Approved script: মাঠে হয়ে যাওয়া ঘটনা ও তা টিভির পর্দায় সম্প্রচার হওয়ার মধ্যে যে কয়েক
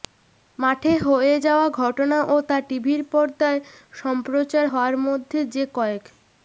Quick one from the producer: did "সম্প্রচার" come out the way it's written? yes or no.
yes